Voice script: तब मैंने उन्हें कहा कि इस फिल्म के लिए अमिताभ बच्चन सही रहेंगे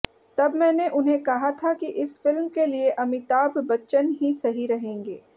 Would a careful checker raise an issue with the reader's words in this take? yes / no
yes